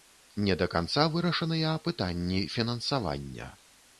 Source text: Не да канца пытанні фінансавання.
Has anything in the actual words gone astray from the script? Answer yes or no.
yes